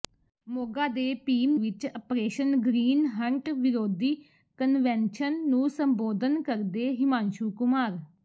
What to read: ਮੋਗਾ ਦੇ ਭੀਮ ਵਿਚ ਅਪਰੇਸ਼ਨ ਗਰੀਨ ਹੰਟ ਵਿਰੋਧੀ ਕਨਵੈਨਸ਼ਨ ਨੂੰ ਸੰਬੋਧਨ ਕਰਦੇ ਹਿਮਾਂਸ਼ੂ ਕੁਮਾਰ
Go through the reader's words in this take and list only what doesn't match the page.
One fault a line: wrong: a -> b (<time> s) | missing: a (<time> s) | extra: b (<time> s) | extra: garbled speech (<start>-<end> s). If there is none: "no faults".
no faults